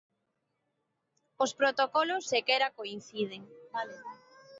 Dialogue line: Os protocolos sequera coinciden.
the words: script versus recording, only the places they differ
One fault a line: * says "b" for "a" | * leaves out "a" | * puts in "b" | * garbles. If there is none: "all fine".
all fine